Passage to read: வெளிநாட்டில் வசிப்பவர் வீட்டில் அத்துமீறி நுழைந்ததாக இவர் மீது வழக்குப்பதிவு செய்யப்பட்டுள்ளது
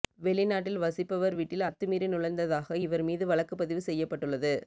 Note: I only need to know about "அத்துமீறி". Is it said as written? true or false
true